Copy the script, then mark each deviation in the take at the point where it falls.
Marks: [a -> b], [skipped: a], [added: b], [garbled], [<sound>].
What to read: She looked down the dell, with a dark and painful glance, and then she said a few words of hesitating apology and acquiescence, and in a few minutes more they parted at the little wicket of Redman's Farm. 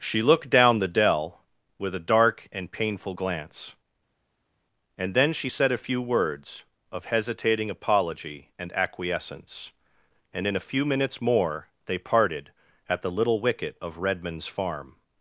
She looked down the dell, with a dark and painful glance, and then she said a few words of hesitating apology and acquiescence, and in a few minutes more they parted at the little wicket of Redman's Farm.